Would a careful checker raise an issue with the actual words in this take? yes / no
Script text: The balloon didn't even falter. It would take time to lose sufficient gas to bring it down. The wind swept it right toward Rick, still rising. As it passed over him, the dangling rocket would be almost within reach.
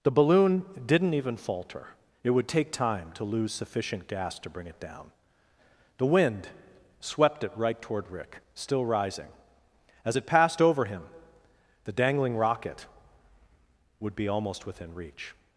no